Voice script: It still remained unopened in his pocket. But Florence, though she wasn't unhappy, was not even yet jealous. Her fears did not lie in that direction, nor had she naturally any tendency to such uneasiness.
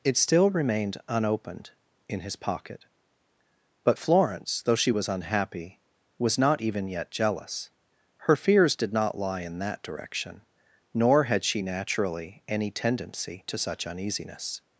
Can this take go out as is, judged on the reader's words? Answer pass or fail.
fail